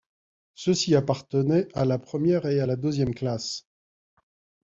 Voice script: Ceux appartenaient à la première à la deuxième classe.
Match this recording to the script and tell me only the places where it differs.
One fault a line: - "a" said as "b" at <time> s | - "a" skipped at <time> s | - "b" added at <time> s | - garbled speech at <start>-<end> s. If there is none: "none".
- "ci" added at 0.7 s
- "et" added at 2.5 s